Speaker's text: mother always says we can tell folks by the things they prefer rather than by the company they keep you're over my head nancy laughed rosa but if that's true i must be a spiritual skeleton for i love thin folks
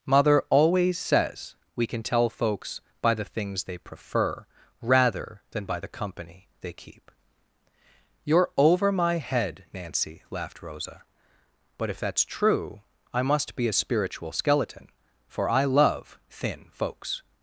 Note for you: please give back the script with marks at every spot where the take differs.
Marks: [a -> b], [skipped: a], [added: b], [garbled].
mother always says we can tell folks by the things they prefer rather than by the company they keep you're over my head nancy laughed rosa but if that's true i must be a spiritual skeleton for i love thin folks